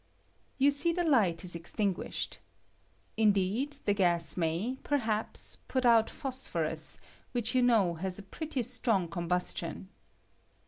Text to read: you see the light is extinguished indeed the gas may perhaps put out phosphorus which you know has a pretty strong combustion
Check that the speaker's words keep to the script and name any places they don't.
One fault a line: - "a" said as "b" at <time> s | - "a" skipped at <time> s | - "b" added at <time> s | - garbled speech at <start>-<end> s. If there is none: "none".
none